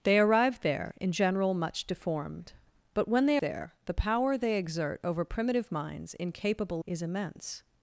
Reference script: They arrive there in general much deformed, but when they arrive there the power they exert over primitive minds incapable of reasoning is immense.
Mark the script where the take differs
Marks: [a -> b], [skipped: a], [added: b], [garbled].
They arrive there in general much deformed, but when they [skipped: arrive] there the power they exert over primitive minds incapable [skipped: of reasoning] is immense.